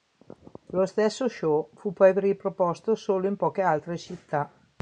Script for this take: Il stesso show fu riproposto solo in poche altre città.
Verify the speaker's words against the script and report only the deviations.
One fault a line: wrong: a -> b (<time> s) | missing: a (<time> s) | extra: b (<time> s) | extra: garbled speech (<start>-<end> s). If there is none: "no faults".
wrong: Il -> Lo (0.7 s)
extra: poi (1.9 s)